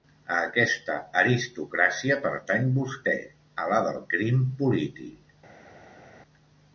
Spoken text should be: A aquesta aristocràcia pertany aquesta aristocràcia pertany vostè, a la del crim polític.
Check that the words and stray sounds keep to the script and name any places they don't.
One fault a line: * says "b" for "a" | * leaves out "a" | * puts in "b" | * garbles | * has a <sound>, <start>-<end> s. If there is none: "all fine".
* leaves out "aquesta aristocràcia pertany"